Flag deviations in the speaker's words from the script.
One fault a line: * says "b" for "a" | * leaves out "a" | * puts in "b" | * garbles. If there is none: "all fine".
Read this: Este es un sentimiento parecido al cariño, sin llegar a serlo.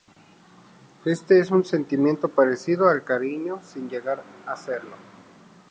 all fine